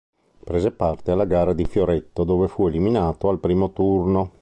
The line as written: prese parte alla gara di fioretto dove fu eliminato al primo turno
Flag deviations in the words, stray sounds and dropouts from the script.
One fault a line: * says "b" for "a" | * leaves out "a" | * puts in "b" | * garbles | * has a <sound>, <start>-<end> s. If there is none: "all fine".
all fine